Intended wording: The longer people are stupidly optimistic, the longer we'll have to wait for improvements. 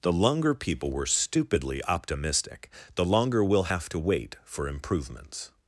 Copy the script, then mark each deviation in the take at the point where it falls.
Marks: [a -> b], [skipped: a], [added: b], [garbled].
The longer people [are -> were] stupidly optimistic, the longer we'll have to wait for improvements.